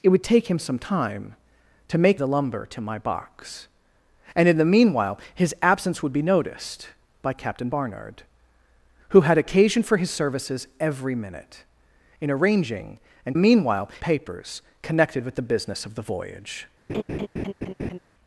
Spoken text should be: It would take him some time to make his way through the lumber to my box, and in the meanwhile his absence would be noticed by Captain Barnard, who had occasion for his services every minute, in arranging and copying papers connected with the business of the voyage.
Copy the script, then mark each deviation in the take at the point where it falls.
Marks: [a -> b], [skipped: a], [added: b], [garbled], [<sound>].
It would take him some time to make [skipped: his way through] the lumber to my box, and in the meanwhile his absence would be noticed by Captain Barnard, who had occasion for his services every minute, in arranging and [copying -> meanwhile] papers connected with the business of the voyage. [laugh]